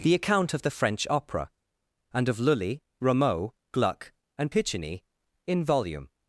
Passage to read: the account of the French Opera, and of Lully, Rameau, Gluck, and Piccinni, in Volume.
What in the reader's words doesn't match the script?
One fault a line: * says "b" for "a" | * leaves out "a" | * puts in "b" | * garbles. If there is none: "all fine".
all fine